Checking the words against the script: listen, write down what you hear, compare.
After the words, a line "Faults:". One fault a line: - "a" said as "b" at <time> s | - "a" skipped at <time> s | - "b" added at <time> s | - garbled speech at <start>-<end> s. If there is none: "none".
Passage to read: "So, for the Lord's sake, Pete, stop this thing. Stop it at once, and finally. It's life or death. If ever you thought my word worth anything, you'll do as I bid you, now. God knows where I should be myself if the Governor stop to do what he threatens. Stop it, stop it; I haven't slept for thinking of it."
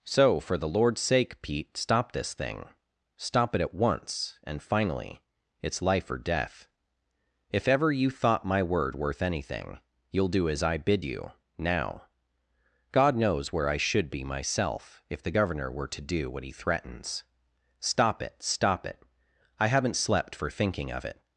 "So, for the Lord's sake, Pete, stop this thing. Stop it at once, and finally. It's life or death. If ever you thought my word worth anything, you'll do as I bid you, now. God knows where I should be myself if the Governor were to do what he threatens. Stop it, stop it; I haven't slept for thinking of it."
Faults:
- "stop" said as "were" at 15.7 s